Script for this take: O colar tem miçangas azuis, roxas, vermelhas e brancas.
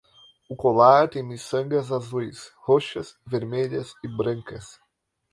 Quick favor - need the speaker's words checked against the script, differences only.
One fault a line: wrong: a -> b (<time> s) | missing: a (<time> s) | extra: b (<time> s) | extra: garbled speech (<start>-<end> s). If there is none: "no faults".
no faults